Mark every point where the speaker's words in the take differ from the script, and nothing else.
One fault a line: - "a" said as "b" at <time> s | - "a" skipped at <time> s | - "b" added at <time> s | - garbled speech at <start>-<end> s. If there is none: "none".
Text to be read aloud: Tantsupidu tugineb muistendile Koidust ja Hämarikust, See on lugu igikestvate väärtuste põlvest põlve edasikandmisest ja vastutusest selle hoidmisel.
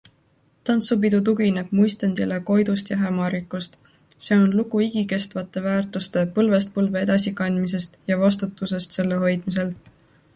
none